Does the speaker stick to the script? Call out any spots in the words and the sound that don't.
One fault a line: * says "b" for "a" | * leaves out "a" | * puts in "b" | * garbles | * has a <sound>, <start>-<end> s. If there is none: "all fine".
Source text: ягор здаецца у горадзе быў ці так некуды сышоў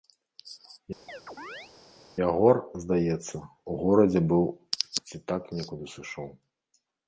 * has a chirp, 1.1-1.7 s